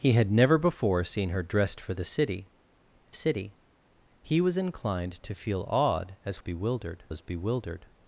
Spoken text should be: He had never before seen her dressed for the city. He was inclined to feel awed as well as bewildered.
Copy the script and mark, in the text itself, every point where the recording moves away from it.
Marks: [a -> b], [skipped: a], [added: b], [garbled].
He had never before seen her dressed for the city. [added: city] He was inclined to feel awed as [well -> bewildered] as bewildered.